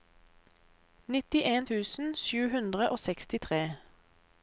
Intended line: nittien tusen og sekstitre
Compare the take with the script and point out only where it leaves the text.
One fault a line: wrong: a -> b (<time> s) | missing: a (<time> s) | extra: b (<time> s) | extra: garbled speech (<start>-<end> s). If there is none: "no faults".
extra: sju hundre (2.2 s)